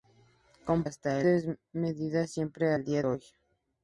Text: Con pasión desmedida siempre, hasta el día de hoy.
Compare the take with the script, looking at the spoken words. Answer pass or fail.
fail